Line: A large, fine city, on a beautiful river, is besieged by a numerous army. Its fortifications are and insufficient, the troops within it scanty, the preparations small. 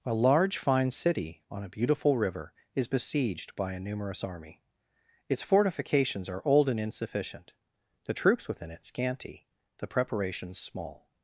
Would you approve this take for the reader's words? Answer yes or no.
no